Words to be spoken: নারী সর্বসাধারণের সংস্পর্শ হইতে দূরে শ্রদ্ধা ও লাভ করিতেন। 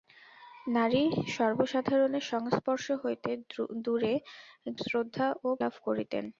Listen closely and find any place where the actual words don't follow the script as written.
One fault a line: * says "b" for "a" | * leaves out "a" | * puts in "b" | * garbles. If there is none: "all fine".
all fine